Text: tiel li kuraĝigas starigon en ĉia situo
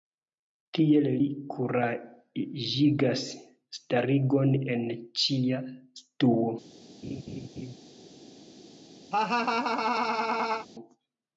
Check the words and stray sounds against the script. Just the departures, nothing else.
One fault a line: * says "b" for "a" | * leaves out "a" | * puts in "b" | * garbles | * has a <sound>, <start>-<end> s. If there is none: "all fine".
* has a laugh, 7.0-7.7 s
* has a laugh, 9.1-10.7 s